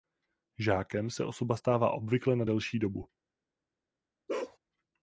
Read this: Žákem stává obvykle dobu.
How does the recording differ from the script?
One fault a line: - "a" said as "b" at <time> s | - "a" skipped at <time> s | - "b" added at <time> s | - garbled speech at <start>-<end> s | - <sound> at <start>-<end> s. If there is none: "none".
- "se osoba" added at 1.1 s
- "na delší" added at 2.4 s
- bark at 4.3-4.6 s